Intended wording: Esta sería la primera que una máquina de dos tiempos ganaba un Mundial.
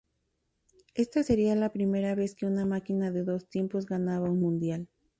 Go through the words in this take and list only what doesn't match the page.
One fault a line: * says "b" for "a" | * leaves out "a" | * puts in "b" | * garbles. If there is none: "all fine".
* puts in "vez"